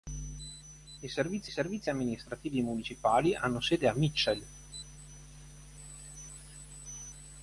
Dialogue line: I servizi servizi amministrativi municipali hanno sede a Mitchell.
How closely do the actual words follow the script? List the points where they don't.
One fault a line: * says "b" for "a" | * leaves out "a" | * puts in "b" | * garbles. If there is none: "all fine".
all fine